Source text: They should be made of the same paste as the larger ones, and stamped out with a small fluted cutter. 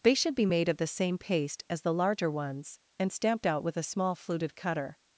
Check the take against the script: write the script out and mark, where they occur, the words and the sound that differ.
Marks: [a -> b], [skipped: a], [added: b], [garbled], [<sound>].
They should be made of the same paste as the larger ones, and stamped out with a small fluted cutter.